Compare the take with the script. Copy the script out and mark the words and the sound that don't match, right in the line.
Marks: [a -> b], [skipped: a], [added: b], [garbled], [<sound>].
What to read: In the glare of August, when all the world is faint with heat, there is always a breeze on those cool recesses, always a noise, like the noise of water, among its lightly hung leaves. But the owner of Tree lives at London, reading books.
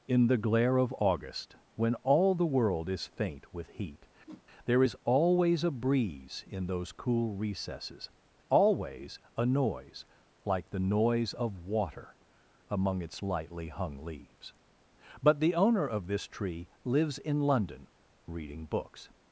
In the glare of August, when all the world is faint with heat, [whoosh] there is always a breeze [on -> in] those cool recesses, always a noise, like the noise of water, among its lightly hung leaves. But the owner of [added: this] Tree lives [at -> in] London, reading books.